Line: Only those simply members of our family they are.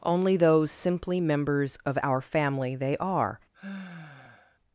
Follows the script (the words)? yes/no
yes